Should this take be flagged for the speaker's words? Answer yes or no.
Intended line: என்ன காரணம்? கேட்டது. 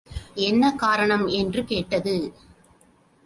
yes